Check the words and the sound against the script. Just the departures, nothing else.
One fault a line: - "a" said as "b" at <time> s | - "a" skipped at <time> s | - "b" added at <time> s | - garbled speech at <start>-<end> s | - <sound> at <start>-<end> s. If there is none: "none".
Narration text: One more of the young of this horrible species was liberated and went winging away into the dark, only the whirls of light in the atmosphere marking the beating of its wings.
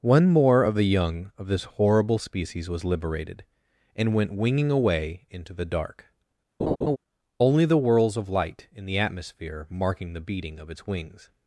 - laugh at 6.6-7.0 s